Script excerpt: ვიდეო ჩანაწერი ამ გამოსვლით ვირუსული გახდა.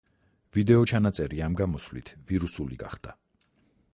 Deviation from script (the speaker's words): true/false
false